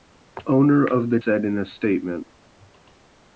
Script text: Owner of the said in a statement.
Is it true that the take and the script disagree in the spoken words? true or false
false